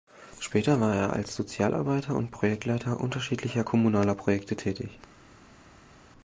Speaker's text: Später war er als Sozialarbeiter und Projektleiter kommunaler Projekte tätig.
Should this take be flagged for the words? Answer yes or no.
yes